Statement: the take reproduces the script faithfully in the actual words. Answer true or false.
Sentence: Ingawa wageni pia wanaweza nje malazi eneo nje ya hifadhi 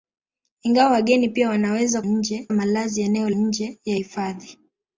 true